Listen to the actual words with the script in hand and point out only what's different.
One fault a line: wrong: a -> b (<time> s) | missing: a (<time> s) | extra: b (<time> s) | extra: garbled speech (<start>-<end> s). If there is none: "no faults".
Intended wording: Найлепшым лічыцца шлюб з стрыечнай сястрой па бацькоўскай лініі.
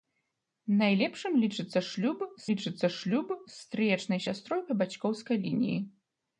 extra: лічыцца шлюб з (2.5 s)